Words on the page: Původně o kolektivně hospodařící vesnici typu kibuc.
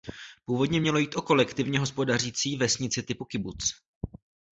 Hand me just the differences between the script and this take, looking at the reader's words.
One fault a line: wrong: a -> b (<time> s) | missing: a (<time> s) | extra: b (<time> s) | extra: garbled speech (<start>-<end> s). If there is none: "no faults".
extra: mělo jít (0.8 s)